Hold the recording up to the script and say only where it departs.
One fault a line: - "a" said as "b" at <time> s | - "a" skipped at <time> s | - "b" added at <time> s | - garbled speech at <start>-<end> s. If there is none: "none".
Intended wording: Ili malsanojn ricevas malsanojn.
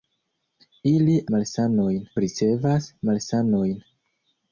none